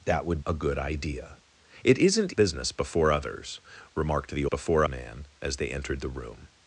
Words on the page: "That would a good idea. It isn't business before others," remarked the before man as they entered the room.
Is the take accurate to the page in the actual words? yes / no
yes